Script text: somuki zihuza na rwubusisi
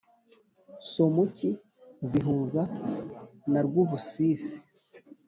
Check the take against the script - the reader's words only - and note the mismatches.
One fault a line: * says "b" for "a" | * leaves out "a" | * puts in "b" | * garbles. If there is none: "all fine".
all fine